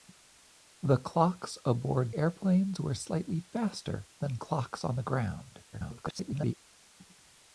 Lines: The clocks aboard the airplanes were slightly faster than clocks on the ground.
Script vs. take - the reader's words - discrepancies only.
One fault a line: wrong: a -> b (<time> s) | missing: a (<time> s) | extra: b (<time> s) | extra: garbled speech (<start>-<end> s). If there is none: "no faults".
missing: the (2.1 s)
extra: garbled speech (5.7-6.6 s)